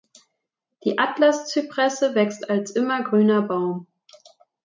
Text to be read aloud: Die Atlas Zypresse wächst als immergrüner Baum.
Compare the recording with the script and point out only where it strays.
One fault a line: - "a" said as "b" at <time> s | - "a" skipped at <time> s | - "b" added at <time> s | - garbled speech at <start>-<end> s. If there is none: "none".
none